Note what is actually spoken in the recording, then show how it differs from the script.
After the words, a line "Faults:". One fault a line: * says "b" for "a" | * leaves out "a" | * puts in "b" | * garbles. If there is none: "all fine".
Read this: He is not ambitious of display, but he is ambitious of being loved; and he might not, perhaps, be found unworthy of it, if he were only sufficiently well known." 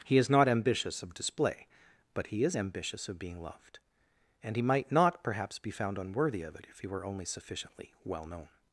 He is not ambitious of display, but he is ambitious of being loved; and he might not, perhaps, be found unworthy of it, if he were only sufficiently well known."
Faults:
all fine